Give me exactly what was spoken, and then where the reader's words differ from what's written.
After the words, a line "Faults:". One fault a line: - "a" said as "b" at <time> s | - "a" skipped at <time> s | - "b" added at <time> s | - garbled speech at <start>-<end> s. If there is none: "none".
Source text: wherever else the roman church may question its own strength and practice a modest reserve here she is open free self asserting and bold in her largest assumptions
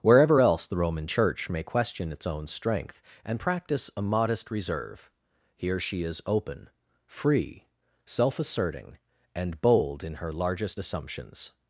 wherever else the roman church may question its own strength and practice a modest reserve here she is open free self asserting and bold in her largest assumptions
Faults:
none